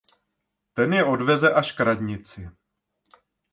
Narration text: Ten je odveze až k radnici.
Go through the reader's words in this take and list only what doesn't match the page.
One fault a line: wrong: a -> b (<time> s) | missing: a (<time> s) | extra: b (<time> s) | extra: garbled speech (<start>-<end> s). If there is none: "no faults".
no faults